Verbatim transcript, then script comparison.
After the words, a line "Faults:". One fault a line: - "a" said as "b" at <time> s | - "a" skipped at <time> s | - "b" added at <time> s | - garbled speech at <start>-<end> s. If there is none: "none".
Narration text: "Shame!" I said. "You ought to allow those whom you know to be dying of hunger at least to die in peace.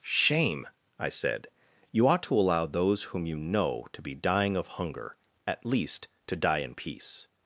"Shame!" I said. "You ought to allow those whom you know to be dying of hunger at least to die in peace.
Faults:
none